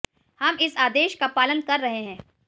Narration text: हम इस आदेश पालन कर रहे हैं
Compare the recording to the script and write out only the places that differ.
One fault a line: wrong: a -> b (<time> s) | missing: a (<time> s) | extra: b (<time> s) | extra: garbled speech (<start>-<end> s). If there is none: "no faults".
extra: का (1.1 s)